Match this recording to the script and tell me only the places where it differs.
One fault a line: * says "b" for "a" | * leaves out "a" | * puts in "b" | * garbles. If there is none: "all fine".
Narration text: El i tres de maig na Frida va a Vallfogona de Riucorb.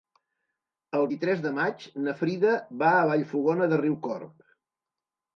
all fine